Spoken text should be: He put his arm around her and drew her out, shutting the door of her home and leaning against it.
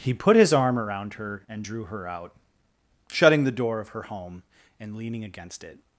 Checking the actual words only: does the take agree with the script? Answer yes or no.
yes